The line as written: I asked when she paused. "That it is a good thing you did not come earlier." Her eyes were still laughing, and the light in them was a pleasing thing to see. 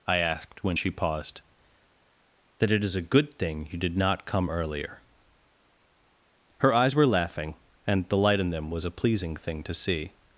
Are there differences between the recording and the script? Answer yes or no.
yes